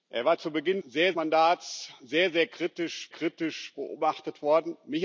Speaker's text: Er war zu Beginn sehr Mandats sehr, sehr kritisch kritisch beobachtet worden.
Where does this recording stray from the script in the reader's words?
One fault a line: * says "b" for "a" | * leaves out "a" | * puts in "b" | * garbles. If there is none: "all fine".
all fine